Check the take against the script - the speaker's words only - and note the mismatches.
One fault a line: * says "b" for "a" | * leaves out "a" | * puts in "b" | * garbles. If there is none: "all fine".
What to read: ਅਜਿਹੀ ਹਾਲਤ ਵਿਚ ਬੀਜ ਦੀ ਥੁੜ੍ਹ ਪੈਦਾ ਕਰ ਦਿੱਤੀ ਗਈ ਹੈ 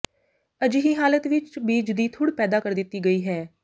all fine